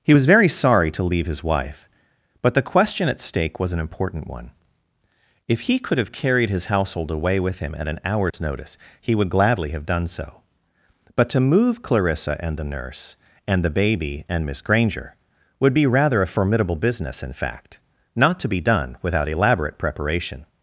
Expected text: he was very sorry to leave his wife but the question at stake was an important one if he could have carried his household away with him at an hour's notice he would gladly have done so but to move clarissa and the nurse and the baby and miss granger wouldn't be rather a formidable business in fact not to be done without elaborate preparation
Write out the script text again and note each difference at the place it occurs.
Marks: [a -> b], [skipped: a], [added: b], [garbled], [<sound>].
he was very sorry to leave his wife but the question at stake was an important one if he could have carried his household away with him at an hour's [dropout] notice he would gladly have done so but to move clarissa and the nurse and the baby and miss granger [wouldn't -> would] be rather a formidable business in fact not to be done without elaborate preparation